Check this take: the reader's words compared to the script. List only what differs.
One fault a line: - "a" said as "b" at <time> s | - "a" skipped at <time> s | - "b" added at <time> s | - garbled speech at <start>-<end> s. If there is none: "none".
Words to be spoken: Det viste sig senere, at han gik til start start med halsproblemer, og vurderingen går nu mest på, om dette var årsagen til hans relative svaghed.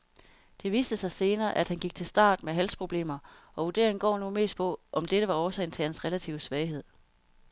- "start" skipped at 2.4 s